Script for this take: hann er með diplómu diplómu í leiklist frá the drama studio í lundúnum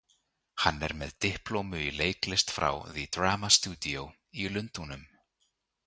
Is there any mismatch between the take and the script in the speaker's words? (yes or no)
yes